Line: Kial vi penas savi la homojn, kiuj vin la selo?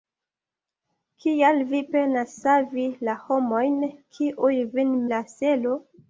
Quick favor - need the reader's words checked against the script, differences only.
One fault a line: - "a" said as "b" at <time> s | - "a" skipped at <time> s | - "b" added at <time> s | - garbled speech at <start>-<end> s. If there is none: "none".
none